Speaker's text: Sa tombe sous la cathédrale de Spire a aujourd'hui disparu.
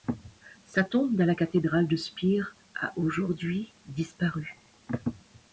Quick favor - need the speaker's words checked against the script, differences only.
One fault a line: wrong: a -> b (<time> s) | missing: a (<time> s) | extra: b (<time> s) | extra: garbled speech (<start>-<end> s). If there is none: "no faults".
wrong: sous -> dans (1.1 s)